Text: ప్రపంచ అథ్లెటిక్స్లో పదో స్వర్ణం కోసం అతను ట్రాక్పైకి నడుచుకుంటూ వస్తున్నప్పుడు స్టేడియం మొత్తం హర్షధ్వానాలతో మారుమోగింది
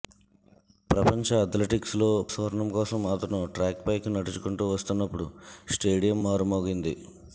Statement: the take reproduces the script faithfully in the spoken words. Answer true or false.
false